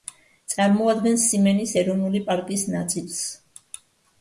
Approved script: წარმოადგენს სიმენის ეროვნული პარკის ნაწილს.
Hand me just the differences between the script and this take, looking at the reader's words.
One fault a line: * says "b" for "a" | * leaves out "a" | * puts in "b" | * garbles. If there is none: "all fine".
all fine